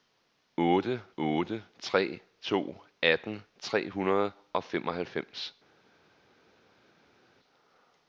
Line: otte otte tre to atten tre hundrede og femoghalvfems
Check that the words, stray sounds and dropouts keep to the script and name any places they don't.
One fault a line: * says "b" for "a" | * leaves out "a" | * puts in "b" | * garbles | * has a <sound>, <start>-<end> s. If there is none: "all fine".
all fine